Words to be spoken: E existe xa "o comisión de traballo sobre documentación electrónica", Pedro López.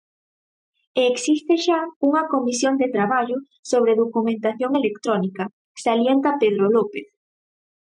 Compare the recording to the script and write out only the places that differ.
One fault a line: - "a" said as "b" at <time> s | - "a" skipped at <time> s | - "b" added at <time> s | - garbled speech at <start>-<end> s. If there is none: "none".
- "o" said as "unha" at 2.1 s
- "salienta" added at 5.8 s